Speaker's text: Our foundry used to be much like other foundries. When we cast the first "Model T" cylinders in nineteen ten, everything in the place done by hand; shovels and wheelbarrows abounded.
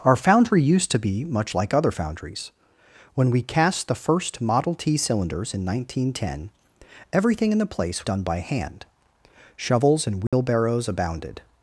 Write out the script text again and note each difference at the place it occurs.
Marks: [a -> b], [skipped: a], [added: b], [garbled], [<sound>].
Our foundry used to be much like other foundries. When we cast the first "Model T" cylinders in nineteen ten, everything in the place done by hand; shovels and wheelbarrows [dropout] abounded.